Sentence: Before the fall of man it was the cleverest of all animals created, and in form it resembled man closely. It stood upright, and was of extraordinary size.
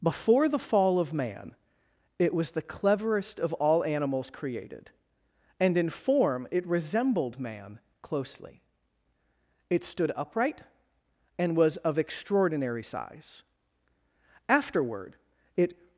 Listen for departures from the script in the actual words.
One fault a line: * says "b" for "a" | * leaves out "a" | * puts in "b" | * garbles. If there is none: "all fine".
* puts in "Afterward it"